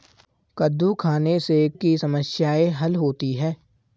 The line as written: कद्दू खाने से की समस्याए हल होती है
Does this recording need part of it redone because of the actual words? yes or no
no